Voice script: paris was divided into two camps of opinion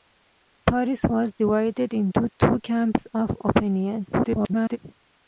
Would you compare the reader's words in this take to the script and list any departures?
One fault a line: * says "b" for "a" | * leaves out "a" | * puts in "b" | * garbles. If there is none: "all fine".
* garbles